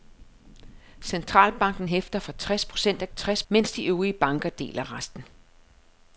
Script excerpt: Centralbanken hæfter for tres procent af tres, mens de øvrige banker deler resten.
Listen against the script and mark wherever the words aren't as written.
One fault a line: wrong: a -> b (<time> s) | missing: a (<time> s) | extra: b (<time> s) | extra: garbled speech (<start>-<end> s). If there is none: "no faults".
no faults